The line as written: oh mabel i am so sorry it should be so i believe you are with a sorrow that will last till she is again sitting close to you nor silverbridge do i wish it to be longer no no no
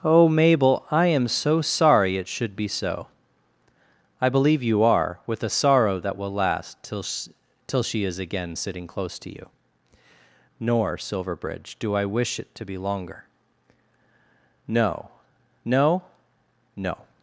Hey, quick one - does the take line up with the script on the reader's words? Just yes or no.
no